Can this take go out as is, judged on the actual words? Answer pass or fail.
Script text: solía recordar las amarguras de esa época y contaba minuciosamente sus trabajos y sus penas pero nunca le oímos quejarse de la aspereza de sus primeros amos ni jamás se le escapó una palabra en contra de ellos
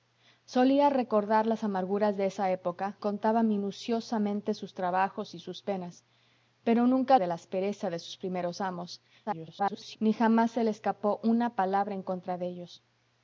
fail